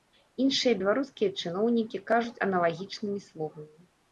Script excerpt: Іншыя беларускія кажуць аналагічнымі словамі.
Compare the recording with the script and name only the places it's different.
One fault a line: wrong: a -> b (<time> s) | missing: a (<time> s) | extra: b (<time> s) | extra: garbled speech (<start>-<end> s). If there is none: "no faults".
extra: чыноўнікі (1.4 s)